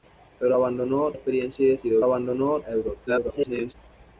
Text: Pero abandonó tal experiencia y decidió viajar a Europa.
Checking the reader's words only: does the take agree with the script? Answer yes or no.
no